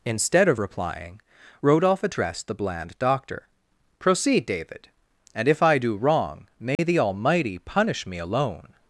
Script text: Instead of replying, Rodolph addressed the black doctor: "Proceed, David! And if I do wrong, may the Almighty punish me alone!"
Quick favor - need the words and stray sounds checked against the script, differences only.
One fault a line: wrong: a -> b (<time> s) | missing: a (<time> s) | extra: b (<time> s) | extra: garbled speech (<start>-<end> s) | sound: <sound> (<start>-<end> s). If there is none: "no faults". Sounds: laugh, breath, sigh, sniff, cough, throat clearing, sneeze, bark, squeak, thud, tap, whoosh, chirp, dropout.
wrong: black -> bland (2.5 s)
sound: dropout (6.8-6.8 s)